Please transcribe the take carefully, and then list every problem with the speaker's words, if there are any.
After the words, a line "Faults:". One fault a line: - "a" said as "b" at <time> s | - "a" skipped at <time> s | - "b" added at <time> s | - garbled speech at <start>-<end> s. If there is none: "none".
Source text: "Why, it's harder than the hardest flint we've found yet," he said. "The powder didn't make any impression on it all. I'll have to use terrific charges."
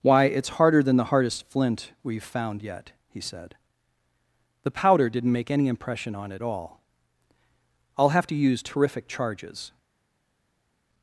"Why, it's harder than the hardest flint we've found yet," he said. "The powder didn't make any impression on it all. I'll have to use terrific charges."
Faults:
none